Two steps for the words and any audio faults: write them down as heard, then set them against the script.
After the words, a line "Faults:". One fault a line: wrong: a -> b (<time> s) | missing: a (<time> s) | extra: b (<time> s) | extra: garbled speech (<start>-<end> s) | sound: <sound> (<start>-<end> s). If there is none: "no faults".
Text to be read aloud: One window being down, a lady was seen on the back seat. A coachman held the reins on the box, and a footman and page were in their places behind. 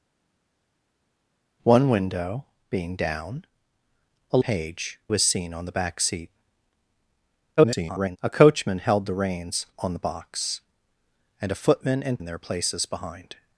One window being down, a page was seen on the back seat. [garbled] A coachman held the reins on the box, and a footman and in their places behind.
Faults:
wrong: lady -> page (4.4 s)
extra: garbled speech (7.6-8.2 s)
missing: page were (12.2 s)